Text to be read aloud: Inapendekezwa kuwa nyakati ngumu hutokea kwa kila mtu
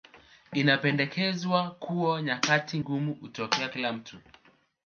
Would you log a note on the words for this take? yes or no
yes